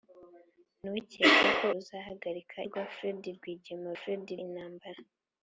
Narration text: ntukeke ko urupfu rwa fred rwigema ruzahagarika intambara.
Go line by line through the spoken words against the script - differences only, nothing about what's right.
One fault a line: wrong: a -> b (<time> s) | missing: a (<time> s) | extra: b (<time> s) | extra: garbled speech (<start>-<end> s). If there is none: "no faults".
wrong: urupfu -> ruzahagarika (1.7 s)
wrong: ruzahagarika -> fred (4.0 s)